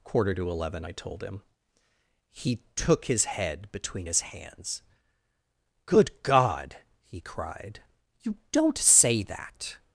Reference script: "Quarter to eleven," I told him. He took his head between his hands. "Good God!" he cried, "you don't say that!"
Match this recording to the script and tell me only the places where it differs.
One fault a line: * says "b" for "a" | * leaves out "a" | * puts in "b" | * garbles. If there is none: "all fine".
all fine